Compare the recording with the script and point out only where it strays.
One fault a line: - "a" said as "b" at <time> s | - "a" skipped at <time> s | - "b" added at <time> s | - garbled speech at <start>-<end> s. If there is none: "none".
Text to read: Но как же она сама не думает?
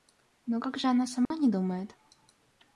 none